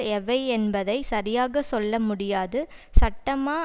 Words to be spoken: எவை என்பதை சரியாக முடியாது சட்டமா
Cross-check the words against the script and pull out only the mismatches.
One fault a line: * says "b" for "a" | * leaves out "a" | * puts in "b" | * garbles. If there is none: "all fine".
* puts in "சொல்ல"